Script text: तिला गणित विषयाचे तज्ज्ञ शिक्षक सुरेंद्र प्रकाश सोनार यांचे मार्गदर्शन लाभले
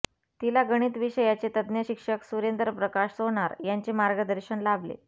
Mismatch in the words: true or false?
false